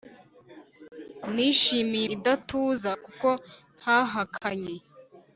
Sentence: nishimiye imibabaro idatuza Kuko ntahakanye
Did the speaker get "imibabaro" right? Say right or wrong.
wrong